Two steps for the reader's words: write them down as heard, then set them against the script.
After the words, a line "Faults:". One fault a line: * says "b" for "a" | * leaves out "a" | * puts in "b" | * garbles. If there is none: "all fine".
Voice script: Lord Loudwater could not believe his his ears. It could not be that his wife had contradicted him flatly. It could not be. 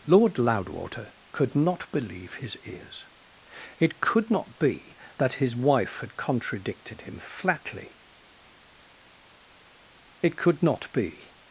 Lord Loudwater could not believe his ears. It could not be that his wife had contradicted him flatly. It could not be.
Faults:
* leaves out "his"